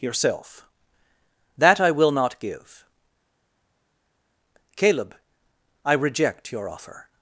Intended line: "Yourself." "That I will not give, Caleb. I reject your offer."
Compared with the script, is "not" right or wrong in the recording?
right